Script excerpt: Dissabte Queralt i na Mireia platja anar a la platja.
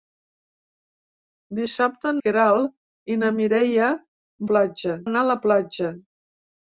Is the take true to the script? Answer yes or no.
yes